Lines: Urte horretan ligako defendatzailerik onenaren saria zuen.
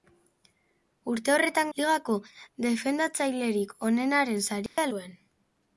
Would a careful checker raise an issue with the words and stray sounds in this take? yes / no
yes